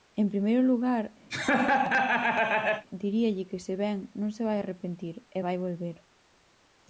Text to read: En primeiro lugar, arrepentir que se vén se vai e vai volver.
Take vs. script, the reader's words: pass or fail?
fail